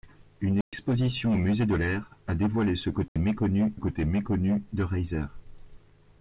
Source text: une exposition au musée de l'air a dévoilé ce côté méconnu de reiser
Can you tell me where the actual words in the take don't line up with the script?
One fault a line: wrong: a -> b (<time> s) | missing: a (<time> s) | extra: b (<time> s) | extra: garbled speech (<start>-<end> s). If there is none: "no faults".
extra: côté méconnu (3.8 s)